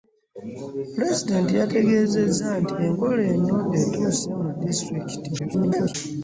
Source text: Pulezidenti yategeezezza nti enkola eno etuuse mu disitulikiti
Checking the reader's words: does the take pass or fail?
fail